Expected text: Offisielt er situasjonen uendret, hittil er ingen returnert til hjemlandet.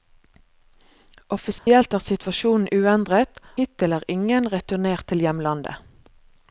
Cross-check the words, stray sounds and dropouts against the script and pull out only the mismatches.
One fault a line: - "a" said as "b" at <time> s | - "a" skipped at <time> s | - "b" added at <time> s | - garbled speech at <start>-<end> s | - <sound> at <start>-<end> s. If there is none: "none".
- dropout at 1.6-1.7 s